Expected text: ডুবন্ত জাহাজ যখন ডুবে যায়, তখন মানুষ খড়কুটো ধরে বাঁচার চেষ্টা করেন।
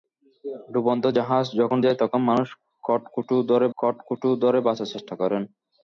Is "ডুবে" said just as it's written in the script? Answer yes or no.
no